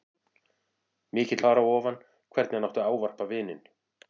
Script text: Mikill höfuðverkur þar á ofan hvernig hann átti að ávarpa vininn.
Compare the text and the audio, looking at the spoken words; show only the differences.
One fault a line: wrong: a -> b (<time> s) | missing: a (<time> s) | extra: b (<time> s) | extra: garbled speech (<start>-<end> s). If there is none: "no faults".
missing: höfuðverkur (1.4 s)